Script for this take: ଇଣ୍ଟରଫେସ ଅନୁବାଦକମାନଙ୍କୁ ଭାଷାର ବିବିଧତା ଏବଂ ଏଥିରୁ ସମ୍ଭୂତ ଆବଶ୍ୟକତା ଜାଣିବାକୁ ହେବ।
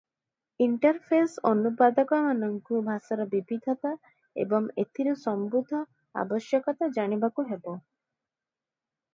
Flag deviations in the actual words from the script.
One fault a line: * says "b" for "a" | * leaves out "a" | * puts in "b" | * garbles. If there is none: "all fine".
all fine